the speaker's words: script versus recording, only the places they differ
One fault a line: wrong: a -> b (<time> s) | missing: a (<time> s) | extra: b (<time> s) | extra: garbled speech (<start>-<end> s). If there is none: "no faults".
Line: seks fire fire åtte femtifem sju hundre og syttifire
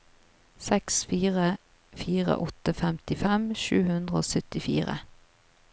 no faults